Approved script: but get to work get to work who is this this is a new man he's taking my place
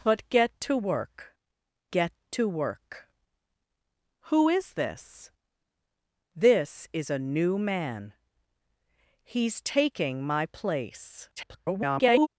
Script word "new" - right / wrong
right